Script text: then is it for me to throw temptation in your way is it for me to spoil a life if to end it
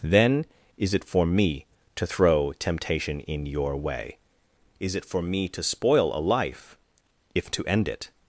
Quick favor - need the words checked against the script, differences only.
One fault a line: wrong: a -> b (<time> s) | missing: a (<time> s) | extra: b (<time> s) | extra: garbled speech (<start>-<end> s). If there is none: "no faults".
no faults